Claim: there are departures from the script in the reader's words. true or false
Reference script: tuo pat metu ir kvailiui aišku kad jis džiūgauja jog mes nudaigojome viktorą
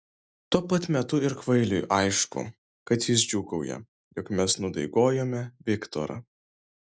false